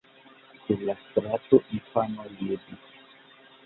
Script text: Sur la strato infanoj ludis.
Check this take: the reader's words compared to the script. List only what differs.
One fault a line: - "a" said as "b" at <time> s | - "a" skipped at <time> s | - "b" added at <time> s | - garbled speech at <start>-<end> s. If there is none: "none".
none